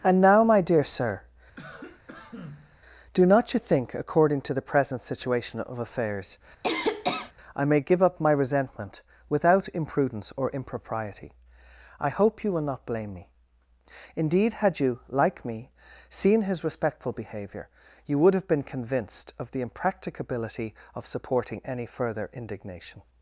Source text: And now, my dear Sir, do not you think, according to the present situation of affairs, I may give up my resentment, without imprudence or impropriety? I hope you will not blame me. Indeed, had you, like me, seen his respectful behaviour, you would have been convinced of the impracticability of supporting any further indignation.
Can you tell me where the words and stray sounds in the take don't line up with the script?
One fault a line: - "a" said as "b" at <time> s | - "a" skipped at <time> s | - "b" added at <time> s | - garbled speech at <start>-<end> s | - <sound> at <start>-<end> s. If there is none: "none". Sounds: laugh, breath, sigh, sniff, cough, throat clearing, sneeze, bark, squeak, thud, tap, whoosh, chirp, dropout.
- cough at 1.6-2.8 s
- cough at 6.6-7.3 s